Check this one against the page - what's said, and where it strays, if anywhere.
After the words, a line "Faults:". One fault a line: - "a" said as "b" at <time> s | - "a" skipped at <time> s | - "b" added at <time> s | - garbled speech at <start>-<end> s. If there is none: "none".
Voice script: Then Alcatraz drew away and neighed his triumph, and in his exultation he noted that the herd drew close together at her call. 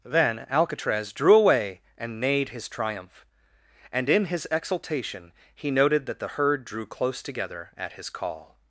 Then Alcatraz drew away and neighed his triumph, and in his exultation he noted that the herd drew close together at his call.
Faults:
- "her" said as "his" at 7.9 s